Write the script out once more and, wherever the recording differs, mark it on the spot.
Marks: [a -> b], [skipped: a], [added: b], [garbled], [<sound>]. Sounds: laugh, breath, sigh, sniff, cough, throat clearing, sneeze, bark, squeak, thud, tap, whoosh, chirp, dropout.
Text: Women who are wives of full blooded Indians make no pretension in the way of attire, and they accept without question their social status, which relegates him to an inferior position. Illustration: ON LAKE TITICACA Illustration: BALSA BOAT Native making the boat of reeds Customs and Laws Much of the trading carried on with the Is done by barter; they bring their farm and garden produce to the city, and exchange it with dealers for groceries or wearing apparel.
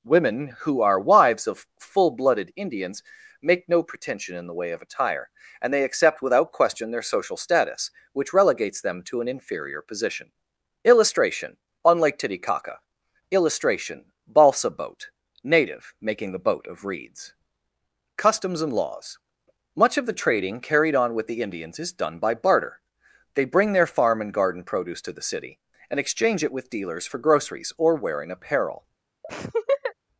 Women who are wives of full blooded Indians make no pretension in the way of attire, and they accept without question their social status, which relegates [him -> them] to an inferior position. Illustration: ON LAKE TITICACA Illustration: BALSA BOAT Native making the boat of reeds Customs and Laws Much of the trading carried on with the [added: Indians] Is done by barter; they bring their farm and garden produce to the city, and exchange it with dealers for groceries or wearing apparel. [laugh]